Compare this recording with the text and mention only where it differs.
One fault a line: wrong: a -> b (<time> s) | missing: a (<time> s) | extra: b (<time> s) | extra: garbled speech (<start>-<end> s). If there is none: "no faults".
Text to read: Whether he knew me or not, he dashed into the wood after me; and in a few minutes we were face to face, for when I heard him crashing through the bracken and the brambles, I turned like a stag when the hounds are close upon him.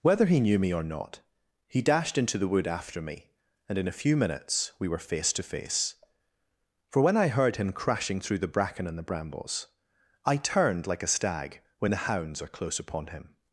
no faults